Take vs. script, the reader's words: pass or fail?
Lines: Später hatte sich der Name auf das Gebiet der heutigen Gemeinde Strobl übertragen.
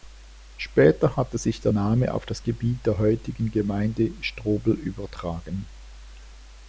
pass